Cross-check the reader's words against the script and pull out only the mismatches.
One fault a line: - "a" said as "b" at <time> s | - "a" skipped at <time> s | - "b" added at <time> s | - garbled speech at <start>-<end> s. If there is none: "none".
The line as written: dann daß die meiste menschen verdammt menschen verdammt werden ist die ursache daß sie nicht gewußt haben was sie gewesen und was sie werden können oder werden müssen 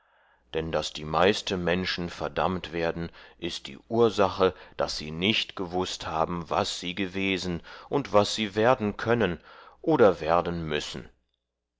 - "menschen verdammt" skipped at 2.7 s